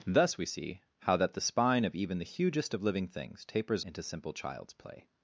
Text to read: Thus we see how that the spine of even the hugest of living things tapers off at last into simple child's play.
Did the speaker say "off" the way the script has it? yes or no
no